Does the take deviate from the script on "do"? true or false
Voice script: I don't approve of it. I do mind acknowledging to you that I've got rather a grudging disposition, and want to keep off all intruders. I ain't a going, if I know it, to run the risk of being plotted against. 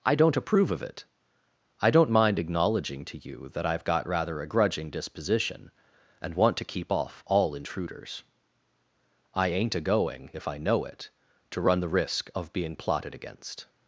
true